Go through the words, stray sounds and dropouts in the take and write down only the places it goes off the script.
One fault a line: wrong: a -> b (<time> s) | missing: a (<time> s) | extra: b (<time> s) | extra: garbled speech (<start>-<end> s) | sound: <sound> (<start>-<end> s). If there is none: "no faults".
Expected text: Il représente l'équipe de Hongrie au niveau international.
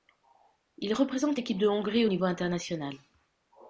no faults